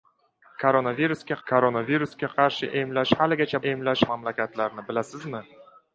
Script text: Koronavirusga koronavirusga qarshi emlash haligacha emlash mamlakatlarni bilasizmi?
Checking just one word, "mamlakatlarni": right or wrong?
right